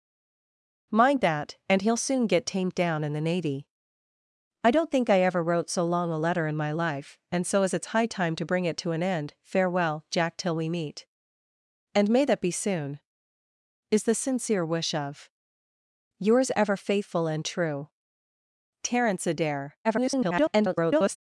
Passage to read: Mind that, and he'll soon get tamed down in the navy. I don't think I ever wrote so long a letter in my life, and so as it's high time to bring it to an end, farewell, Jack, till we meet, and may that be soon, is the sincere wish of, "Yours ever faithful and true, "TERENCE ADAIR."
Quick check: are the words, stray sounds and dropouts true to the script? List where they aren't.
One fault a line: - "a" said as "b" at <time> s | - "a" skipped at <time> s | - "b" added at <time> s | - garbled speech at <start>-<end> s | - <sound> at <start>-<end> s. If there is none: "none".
- garbled speech at 19.8-21.2 s